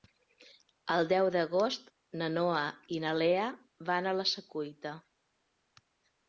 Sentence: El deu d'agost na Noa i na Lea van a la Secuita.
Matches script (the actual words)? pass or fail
pass